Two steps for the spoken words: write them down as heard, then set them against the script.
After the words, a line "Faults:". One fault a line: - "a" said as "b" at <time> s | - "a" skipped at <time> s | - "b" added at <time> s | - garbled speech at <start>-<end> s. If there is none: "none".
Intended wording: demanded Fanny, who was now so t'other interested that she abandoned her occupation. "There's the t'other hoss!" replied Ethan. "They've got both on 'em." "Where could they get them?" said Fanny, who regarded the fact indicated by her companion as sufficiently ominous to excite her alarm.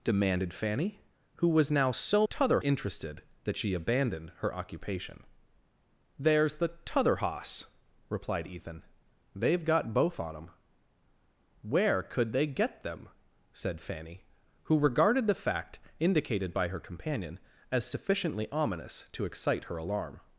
demanded Fanny, who was now so t'other interested that she abandoned her occupation. "There's the t'other hoss!" replied Ethan. "They've got both on 'em." "Where could they get them?" said Fanny, who regarded the fact indicated by her companion as sufficiently ominous to excite her alarm.
Faults:
none